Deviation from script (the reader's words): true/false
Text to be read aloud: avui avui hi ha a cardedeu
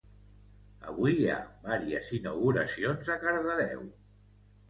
true